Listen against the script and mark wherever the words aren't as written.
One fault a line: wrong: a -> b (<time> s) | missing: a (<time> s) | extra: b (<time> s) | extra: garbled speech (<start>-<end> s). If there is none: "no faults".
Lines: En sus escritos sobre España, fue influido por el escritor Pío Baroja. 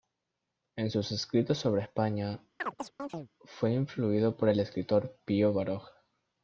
no faults